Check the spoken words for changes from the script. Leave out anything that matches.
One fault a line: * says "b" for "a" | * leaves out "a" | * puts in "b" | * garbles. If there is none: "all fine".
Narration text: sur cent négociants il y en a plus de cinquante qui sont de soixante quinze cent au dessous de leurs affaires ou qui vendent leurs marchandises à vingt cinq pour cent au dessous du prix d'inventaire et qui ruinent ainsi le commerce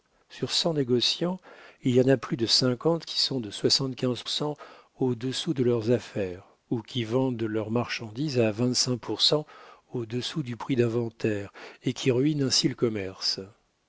all fine